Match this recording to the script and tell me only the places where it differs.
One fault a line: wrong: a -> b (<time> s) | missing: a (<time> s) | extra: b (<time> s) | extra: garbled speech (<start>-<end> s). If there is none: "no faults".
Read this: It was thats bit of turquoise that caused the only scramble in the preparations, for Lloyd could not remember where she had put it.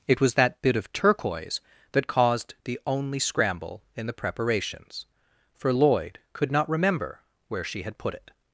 wrong: thats -> that (0.3 s)